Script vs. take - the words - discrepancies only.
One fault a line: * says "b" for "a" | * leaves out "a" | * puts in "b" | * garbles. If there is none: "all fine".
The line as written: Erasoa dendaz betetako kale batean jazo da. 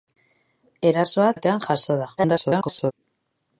* leaves out "dendaz betetako kale"
* garbles